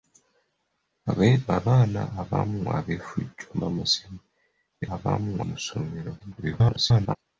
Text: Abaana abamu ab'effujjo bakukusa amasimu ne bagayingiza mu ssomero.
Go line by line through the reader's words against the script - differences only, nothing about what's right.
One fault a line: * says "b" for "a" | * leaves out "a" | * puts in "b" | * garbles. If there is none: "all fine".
* leaves out "bakukusa"
* says "abamu" for "bagayingiza"
* garbles